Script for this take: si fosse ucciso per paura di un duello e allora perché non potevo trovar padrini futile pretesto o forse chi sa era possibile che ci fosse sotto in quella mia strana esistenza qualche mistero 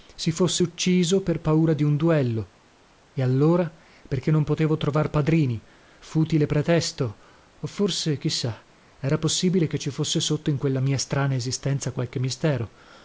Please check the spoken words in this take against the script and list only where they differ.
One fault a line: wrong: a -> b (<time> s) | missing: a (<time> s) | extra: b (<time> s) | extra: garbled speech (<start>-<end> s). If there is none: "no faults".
no faults